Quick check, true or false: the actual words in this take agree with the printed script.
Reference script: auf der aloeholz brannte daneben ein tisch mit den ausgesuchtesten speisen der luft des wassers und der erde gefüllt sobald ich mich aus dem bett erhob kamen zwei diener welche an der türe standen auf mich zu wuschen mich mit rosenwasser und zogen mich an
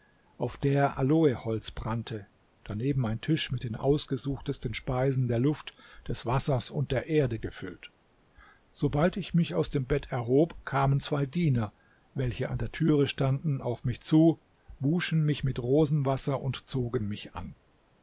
true